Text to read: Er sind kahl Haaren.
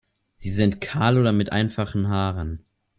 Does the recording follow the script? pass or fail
fail